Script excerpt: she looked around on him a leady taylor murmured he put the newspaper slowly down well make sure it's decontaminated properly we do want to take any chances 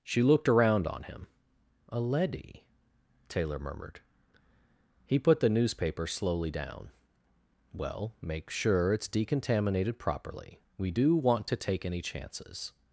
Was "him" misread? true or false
false